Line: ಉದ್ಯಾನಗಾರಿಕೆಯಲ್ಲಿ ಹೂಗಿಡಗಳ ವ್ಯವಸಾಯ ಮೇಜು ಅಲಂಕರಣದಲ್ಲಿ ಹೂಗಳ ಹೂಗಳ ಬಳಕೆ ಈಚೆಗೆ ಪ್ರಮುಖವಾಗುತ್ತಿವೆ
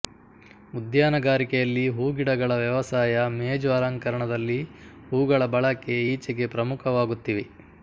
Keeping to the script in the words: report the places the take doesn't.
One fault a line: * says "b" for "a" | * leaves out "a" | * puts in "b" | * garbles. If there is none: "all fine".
* leaves out "ಹೂಗಳ"